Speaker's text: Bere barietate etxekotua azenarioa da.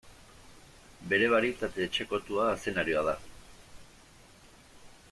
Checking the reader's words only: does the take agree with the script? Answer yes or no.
yes